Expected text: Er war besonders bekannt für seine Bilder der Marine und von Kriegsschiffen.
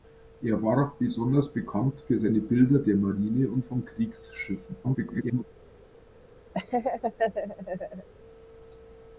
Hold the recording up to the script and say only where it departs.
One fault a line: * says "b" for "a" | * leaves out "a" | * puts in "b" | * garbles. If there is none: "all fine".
* garbles